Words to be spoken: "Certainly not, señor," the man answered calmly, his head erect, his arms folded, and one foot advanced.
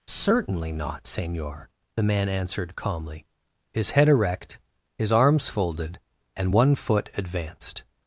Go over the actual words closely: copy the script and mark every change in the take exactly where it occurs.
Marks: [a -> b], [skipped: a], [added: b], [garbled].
"Certainly not, señor," the man answered calmly, his head erect, his arms folded, and one foot advanced.